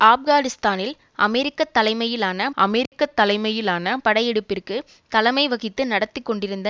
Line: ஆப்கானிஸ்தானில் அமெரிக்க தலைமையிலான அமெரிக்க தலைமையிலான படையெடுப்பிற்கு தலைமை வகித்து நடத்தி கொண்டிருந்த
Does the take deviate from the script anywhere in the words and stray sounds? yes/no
yes